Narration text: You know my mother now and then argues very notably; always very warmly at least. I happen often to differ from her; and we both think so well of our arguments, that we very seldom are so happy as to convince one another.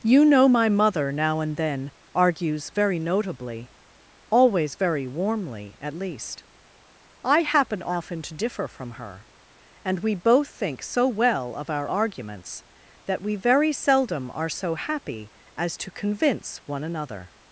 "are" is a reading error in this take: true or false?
false